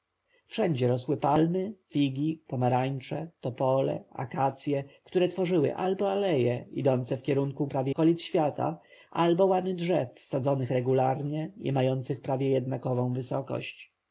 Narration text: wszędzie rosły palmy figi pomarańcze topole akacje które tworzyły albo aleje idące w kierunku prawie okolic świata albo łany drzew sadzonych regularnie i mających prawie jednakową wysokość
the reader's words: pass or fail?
pass